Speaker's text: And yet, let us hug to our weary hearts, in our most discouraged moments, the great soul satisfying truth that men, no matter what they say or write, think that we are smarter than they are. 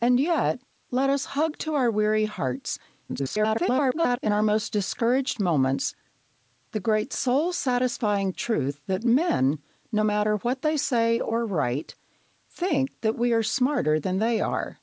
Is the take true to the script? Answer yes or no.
no